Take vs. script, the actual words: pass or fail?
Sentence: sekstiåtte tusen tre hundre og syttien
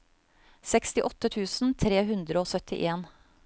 pass